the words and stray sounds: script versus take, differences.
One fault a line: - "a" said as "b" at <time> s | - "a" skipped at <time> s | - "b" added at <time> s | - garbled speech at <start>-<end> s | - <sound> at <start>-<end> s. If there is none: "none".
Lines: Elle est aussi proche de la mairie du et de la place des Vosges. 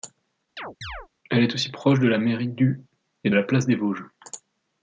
- chirp at 0.6-1.1 s
- "de" skipped at 3.3 s